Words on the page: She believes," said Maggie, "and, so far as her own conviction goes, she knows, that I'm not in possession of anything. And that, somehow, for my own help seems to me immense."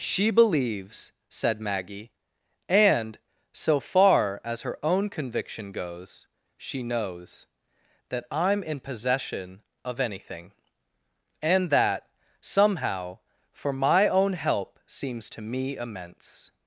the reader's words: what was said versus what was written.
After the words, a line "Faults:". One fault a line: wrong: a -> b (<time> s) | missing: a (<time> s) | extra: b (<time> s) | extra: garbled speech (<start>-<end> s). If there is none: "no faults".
She believes," said Maggie, "and, so far as her own conviction goes, she knows, that I'm in possession of anything. And that, somehow, for my own help seems to me immense."
Faults:
missing: not (8.6 s)